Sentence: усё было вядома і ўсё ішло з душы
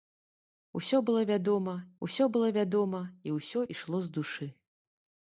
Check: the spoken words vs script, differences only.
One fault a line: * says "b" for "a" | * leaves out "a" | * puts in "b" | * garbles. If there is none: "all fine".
* puts in "усё было вядома"